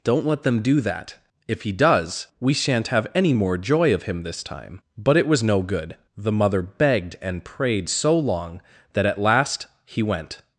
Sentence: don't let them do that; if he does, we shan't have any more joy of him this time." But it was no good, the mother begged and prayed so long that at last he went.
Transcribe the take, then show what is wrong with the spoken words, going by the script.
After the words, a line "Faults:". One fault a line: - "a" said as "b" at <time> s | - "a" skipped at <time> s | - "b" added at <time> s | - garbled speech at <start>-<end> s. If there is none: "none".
don't let them do that; if he does, we shan't have any more joy of him this time." But it was no good, the mother begged and prayed so long that at last he went.
Faults:
none